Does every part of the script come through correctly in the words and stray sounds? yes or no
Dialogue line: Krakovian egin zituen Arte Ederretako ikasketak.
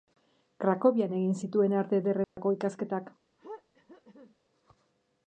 no